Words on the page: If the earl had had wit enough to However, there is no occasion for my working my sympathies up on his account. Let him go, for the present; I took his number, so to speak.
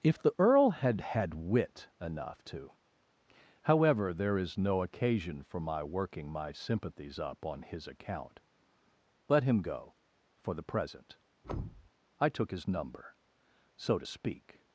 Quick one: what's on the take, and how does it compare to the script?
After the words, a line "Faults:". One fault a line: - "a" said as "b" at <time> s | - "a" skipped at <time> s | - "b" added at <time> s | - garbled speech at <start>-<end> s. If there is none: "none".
If the earl had had wit enough to However, there is no occasion for my working my sympathies up on his account. Let him go, for the present; I took his number, so to speak.
Faults:
none